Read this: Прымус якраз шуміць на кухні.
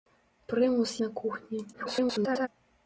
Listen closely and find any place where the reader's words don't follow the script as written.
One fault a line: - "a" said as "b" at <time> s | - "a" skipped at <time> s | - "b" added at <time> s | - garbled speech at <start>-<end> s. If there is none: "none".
- "якраз шуміць" skipped at 0.9 s
- garbled speech at 1.7-2.5 s